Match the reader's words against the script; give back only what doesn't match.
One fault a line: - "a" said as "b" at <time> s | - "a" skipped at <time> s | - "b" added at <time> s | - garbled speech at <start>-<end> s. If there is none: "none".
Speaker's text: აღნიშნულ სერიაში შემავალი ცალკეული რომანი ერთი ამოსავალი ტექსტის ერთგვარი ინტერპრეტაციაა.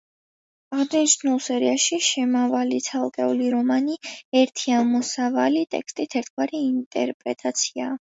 none